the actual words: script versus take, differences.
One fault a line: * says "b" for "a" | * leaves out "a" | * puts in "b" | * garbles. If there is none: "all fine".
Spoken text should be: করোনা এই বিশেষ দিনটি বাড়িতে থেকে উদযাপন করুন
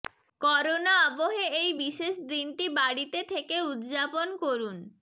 * puts in "আবহে"